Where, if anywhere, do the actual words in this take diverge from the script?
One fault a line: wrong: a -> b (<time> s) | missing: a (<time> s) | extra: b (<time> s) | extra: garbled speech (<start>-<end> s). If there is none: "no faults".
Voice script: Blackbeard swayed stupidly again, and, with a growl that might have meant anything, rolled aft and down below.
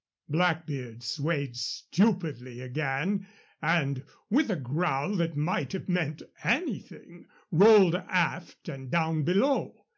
no faults